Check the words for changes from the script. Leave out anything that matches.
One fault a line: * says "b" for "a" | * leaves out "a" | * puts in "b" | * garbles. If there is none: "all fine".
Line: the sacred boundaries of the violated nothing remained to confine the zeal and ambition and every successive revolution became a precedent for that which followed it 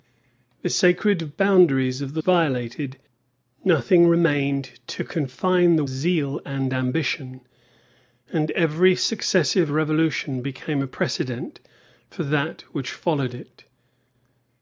all fine